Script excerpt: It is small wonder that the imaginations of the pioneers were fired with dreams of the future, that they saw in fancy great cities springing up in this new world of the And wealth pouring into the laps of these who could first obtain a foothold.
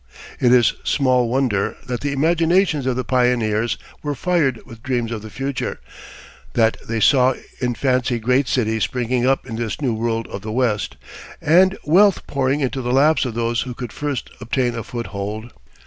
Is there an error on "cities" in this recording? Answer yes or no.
no